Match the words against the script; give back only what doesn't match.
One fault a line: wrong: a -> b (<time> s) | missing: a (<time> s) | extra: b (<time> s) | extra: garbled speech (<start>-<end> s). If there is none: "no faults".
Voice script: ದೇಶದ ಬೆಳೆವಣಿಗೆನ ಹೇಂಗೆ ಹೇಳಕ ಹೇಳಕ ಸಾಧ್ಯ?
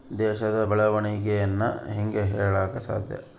missing: ಹೇಳಕ (2.8 s)